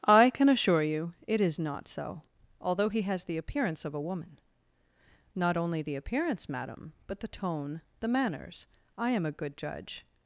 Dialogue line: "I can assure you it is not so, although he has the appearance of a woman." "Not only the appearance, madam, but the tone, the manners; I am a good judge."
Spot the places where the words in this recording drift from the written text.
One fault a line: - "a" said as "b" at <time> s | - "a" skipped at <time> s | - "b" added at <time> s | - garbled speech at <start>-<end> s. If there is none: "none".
none